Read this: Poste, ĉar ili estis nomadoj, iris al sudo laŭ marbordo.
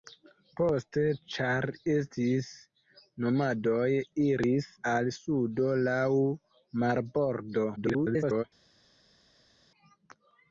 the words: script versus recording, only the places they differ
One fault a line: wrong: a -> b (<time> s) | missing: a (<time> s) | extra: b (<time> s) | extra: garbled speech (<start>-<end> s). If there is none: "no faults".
missing: ili (1.7 s)
extra: garbled speech (7.8-8.4 s)